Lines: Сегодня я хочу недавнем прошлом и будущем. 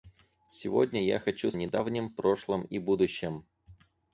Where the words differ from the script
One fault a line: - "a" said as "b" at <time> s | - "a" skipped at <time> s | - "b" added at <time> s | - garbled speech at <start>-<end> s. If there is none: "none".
none